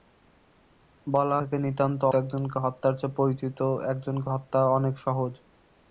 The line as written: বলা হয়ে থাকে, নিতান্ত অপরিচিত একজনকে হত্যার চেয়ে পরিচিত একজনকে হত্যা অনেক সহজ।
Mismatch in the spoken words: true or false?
true